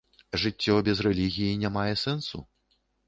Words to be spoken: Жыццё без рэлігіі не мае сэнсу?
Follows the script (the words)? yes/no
yes